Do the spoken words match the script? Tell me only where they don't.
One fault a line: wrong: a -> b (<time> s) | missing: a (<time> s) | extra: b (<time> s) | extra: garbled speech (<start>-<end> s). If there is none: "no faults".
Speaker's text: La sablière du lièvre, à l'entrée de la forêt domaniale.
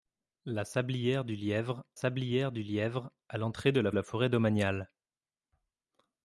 extra: sablière du lièvre (1.9 s)
extra: la (3.9 s)